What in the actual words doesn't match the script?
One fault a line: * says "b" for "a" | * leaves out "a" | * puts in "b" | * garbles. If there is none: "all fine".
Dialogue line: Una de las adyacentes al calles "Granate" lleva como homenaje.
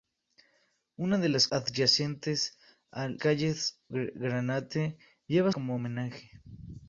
all fine